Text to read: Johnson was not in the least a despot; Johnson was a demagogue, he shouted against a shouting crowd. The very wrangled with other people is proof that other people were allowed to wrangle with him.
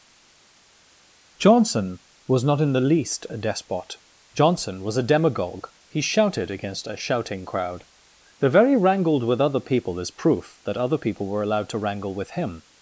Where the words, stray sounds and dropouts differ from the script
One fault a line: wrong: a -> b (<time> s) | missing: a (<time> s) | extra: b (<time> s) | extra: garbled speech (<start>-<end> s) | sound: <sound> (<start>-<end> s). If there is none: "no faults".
no faults